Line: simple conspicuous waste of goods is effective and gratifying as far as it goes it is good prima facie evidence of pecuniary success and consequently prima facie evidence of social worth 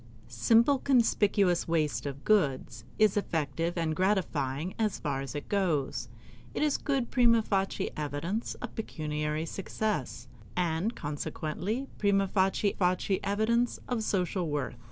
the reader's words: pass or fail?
fail